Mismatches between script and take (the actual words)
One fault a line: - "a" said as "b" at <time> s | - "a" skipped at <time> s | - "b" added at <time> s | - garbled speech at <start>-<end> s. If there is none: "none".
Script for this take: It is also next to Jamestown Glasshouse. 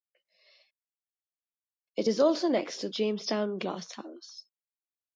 none